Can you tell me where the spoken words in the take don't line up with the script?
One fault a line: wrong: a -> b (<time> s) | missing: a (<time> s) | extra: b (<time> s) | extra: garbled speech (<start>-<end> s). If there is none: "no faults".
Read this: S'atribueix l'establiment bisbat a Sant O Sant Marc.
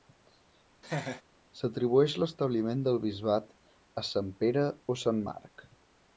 extra: del (2.9 s)
extra: Pere (4.4 s)